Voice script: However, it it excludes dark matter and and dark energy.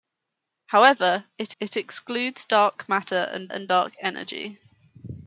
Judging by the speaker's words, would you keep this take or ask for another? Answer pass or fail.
pass